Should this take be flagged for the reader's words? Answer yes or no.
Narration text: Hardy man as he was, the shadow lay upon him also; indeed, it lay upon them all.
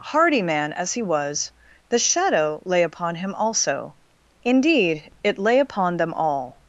no